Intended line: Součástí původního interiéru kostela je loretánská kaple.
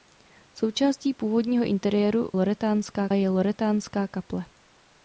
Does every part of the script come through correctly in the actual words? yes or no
no